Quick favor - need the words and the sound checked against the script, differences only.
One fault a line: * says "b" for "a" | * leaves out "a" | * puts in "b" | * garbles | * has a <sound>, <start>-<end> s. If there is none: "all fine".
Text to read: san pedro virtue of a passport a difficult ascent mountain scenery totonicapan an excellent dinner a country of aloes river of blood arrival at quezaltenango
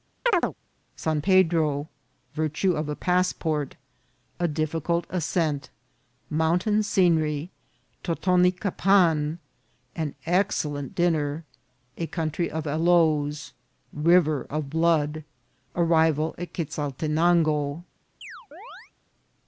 * has a chirp, 0.3-0.5 s
* has a chirp, 18.2-18.9 s